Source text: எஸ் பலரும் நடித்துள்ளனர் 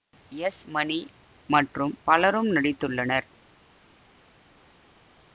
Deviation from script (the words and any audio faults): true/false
true